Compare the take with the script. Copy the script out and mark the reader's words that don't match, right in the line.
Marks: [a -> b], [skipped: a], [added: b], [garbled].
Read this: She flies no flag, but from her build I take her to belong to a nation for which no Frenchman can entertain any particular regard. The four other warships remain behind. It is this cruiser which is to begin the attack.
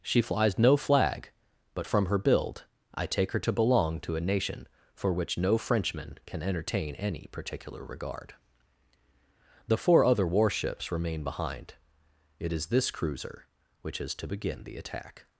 She flies no flag, but from her build I take her to belong to a nation for which no Frenchman can entertain any particular regard. The four other warships remain behind. It is this cruiser which is to begin the attack.